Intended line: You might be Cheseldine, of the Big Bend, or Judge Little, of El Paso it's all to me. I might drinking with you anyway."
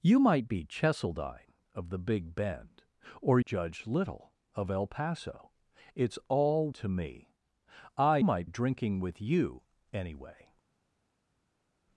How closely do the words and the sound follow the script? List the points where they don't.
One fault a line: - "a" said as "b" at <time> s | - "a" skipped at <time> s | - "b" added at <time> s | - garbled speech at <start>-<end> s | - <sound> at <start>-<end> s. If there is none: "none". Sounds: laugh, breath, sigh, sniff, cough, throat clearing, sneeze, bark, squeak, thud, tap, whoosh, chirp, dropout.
none